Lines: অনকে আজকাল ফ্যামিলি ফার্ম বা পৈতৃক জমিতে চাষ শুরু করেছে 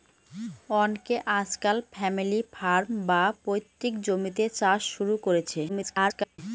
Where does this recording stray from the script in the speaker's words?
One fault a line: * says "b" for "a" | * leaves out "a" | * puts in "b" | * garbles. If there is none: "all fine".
* garbles